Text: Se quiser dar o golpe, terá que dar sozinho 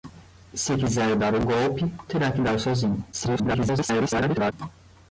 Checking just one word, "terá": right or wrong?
right